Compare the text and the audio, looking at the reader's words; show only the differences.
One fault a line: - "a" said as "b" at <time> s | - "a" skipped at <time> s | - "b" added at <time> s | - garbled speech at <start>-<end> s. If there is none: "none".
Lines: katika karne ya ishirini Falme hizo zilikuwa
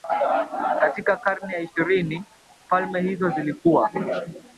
none